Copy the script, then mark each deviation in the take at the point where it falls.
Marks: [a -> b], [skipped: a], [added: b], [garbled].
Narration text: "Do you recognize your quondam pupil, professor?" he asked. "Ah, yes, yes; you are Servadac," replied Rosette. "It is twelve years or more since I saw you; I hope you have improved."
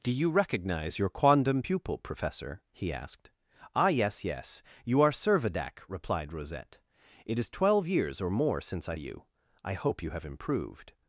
"Do you recognize your quondam pupil, professor?" he asked. "Ah, yes, yes; you are Servadac," replied Rosette. "It is twelve years or more since I [skipped: saw] you; I hope you have improved."